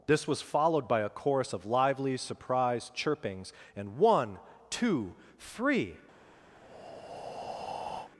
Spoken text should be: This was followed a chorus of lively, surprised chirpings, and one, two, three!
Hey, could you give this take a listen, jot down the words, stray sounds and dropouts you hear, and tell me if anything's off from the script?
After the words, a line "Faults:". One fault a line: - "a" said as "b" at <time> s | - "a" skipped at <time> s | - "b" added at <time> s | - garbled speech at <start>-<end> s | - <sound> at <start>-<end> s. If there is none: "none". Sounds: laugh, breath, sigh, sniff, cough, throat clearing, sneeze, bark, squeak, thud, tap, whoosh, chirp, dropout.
This was followed by a chorus of lively, surprised chirpings, and one, two, three!
Faults:
- "by" added at 0.9 s
- breath at 6.6-8.1 s